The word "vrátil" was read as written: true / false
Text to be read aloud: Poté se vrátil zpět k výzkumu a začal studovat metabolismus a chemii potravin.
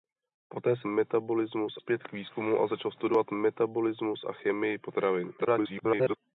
false